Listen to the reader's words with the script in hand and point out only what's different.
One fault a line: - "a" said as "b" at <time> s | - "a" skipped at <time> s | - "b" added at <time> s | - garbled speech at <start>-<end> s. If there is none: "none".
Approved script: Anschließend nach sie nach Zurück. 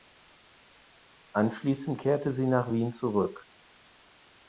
- "nach" said as "kehrte" at 2.0 s
- "Wien" added at 2.7 s